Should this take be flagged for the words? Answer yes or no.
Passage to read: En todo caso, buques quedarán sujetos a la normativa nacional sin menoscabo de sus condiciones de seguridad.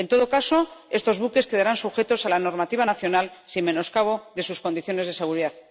yes